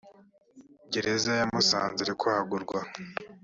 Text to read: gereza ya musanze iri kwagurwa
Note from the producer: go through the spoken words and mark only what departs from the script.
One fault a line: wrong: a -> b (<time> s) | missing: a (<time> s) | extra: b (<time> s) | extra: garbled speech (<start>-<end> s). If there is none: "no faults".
no faults